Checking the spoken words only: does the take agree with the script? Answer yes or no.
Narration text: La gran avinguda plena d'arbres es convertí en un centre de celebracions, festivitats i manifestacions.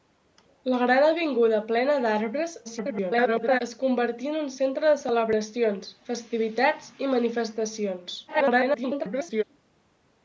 no